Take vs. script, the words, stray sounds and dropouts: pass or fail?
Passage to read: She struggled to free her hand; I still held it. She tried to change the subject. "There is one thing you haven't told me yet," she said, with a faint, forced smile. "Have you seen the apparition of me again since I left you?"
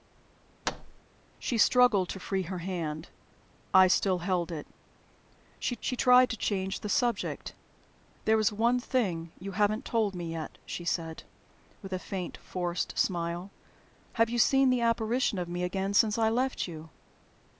fail